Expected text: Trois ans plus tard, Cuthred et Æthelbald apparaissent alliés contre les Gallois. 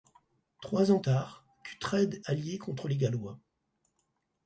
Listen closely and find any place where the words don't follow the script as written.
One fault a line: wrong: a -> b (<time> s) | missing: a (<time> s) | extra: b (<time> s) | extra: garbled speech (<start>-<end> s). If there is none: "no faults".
missing: plus (1.0 s)
missing: et Æthelbald apparaissent (2.2 s)